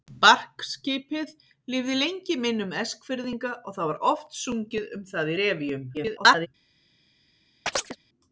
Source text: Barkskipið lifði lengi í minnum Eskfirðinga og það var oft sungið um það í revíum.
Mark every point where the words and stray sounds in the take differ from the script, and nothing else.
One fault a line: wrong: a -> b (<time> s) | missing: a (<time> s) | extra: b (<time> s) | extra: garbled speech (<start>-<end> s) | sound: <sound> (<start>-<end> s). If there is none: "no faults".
extra: garbled speech (5.9-6.5 s)
sound: chirp (7.7-8.0 s)